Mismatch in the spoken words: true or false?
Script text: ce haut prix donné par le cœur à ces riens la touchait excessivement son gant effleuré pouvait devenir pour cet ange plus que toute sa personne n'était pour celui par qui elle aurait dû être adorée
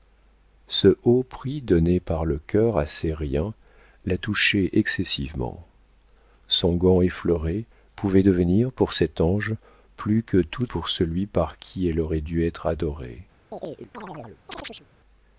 true